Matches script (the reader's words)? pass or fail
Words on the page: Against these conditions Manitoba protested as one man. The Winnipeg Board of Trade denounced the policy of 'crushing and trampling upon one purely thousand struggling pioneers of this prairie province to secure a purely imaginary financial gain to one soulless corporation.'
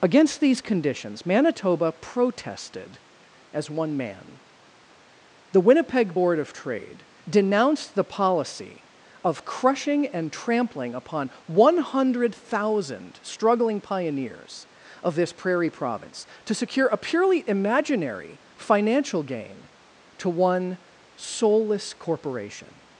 fail